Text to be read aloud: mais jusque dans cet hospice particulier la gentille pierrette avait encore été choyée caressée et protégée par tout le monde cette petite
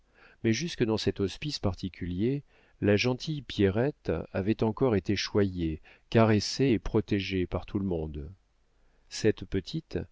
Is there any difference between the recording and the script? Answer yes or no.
no